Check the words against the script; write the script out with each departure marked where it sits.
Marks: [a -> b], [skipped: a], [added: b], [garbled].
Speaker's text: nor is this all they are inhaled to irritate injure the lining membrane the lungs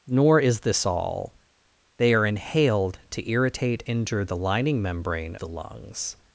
nor is this all they are inhaled to irritate injure the lining membrane the lungs